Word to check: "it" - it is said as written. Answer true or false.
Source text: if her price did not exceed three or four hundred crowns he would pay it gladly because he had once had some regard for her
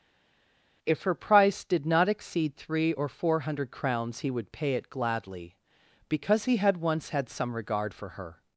true